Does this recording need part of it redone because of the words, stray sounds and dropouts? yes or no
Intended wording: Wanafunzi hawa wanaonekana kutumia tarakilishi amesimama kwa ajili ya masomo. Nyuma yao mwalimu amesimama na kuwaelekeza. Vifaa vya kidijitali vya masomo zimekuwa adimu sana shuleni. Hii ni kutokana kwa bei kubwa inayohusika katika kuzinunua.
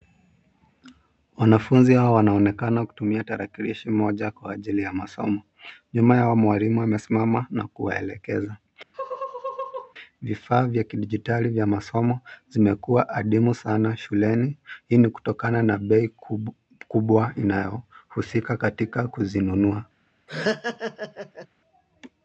yes